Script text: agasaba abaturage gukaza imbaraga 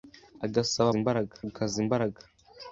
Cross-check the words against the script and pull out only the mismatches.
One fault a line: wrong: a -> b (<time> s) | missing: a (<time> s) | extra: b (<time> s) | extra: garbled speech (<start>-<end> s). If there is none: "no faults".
wrong: abaturage -> imbaraga (1.0 s)